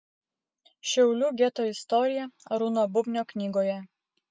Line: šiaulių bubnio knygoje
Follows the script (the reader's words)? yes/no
no